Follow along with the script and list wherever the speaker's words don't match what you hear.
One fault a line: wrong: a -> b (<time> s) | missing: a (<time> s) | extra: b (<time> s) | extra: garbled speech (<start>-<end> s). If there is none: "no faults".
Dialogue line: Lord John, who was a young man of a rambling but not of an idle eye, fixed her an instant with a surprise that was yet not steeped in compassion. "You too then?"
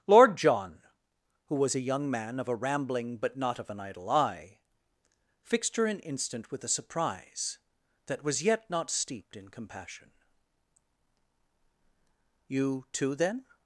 no faults